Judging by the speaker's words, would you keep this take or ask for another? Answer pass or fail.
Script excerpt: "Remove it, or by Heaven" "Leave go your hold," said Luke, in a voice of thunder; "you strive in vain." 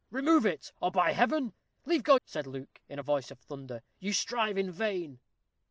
fail